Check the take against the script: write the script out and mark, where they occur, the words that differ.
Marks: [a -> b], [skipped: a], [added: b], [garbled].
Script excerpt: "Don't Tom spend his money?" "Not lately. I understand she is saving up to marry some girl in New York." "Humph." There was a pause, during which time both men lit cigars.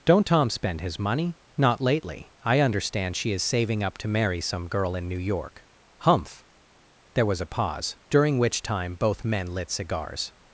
"Don't Tom spend his money?" "Not lately. I understand she is saving up to marry some girl in New York." "Humph." There was a pause, during which time both men lit cigars.